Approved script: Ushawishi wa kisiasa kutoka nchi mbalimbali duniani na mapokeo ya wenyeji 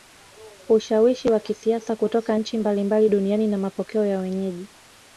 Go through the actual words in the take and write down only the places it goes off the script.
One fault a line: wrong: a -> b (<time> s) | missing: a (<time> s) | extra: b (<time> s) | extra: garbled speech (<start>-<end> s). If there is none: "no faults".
no faults